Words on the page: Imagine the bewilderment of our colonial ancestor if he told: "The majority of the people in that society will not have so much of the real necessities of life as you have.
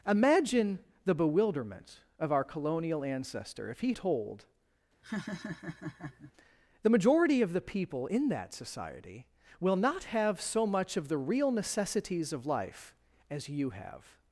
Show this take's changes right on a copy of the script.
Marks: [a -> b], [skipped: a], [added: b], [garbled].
Imagine the bewilderment of our colonial ancestor if he told: "The majority of the people in that society will not have so much of the real necessities of life as you have.